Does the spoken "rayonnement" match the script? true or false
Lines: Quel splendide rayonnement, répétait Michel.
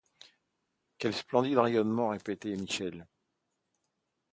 true